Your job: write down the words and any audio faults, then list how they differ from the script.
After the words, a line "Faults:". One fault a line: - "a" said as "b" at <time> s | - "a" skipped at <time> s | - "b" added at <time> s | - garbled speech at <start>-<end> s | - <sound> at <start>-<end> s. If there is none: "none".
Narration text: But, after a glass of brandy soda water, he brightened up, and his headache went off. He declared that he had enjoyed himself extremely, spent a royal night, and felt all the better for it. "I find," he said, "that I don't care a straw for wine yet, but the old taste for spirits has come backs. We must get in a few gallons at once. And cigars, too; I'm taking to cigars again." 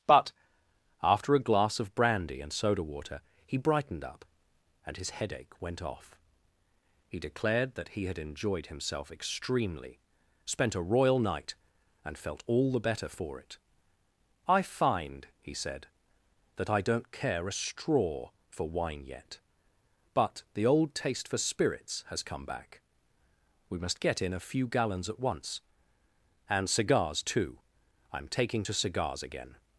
But, after a glass of brandy and soda water, he brightened up, and his headache went off. He declared that he had enjoyed himself extremely, spent a royal night, and felt all the better for it. "I find," he said, "that I don't care a straw for wine yet, but the old taste for spirits has come back. We must get in a few gallons at once. And cigars, too; I'm taking to cigars again."
Faults:
- "and" added at 2.4 s
- "backs" said as "back" at 22.4 s